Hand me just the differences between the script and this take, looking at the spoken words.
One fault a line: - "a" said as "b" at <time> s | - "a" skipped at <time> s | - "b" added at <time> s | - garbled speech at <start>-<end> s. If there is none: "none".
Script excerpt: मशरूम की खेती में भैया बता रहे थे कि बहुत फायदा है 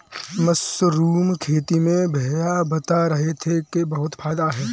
- "की" skipped at 1.3 s